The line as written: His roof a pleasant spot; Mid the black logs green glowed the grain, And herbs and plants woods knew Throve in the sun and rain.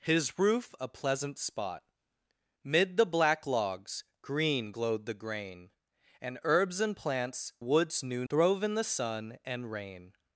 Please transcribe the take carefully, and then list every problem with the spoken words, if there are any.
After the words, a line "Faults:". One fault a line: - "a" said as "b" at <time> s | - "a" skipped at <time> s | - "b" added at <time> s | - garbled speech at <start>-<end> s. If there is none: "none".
His roof a pleasant spot; Mid the black logs green glowed the grain, And herbs and plants woods knew Throve in the sun and rain.
Faults:
none